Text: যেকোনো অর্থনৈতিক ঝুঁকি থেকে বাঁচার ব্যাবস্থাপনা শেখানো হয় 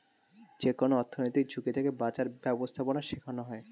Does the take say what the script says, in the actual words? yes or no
yes